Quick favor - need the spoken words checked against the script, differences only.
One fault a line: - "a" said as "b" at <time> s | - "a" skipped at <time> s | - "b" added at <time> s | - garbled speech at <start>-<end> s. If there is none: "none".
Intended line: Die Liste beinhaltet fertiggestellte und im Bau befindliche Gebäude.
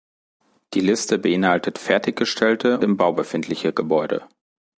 - "und" skipped at 2.8 s